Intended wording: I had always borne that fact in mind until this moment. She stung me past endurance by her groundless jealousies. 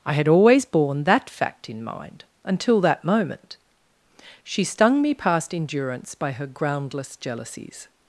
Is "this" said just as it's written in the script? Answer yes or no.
no